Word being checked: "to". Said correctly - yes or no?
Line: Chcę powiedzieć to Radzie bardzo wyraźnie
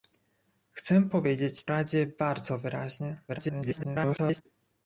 no